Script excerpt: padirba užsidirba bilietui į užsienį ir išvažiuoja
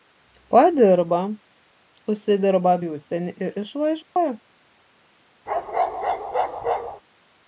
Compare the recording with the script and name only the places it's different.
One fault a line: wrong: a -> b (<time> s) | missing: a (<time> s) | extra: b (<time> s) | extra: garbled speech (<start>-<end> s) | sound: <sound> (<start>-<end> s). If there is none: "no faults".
missing: bilietui (2.7 s)
sound: dropout (4.0-4.2 s)
sound: bark (5.5-7.0 s)